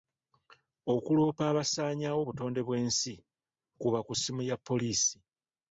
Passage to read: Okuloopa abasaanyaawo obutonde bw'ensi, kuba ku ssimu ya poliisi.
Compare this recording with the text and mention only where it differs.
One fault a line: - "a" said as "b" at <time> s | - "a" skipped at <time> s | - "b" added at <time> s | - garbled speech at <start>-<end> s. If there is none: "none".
none